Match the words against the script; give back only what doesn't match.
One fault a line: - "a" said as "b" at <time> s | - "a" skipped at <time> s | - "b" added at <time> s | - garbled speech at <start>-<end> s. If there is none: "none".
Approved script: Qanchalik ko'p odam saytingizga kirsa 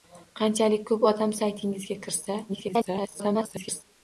- garbled speech at 2.5-3.8 s